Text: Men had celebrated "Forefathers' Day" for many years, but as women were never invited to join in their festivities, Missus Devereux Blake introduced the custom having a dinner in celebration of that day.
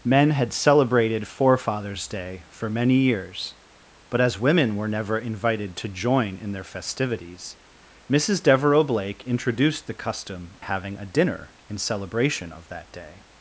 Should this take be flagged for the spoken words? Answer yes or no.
no